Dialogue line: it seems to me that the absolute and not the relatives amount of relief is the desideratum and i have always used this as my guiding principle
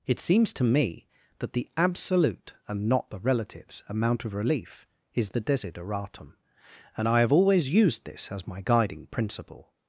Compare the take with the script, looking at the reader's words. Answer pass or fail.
pass